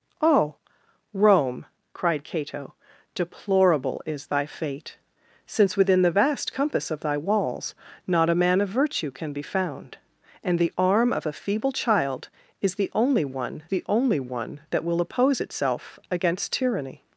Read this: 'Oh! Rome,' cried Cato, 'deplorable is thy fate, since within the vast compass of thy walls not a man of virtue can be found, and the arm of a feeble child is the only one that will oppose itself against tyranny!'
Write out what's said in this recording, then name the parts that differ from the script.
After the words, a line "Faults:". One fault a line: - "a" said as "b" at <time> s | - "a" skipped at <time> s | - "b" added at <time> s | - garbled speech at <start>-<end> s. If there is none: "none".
'Oh! Rome,' cried Cato, 'deplorable is thy fate, since within the vast compass of thy walls not a man of virtue can be found, and the arm of a feeble child is the only one the only one that will oppose itself against tyranny!'
Faults:
- "the only one" added at 13.7 s